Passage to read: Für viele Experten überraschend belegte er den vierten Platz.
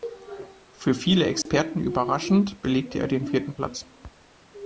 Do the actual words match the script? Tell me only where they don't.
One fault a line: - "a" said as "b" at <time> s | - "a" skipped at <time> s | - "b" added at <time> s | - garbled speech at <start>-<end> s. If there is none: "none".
none